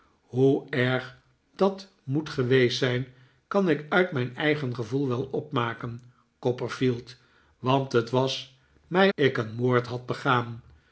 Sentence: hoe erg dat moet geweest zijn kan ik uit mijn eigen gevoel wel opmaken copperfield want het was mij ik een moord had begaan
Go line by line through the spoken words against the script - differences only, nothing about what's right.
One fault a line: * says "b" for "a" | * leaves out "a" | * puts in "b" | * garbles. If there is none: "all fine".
all fine